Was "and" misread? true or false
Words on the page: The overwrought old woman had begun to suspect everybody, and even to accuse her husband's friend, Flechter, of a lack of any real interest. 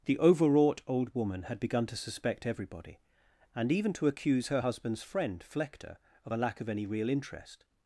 false